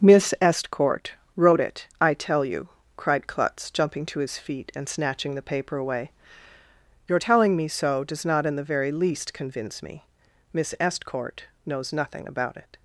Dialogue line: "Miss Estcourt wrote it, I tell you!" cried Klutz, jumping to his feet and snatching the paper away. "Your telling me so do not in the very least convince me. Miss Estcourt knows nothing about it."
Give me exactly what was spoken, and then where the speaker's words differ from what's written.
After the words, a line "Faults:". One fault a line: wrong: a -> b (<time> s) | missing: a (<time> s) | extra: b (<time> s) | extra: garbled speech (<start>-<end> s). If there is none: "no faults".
"Miss Estcourt wrote it, I tell you!" cried Klutz, jumping to his feet and snatching the paper away. "Your telling me so does not in the very least convince me. Miss Estcourt knows nothing about it."
Faults:
wrong: do -> does (8.0 s)